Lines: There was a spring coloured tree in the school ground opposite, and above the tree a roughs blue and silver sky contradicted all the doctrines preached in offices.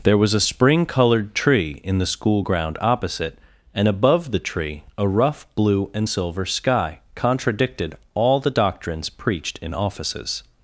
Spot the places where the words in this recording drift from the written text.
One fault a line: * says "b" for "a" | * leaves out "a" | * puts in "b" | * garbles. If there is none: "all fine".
* says "rough" for "roughs"